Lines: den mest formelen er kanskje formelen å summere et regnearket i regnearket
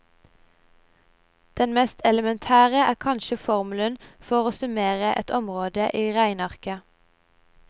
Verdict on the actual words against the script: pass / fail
fail